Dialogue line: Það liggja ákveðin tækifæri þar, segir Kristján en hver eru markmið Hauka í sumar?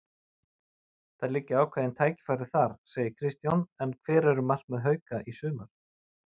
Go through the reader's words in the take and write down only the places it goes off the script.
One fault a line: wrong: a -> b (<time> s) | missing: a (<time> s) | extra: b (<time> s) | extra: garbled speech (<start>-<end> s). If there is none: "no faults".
no faults